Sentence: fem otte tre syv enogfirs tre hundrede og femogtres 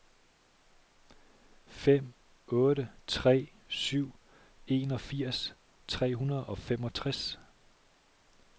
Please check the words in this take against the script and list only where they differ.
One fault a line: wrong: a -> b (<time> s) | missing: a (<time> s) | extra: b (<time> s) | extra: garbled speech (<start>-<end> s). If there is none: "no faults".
no faults